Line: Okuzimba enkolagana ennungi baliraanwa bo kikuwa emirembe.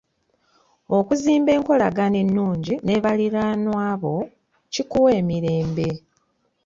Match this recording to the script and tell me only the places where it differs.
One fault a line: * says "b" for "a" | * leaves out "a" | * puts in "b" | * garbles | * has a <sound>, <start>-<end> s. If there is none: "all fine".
* puts in "ne"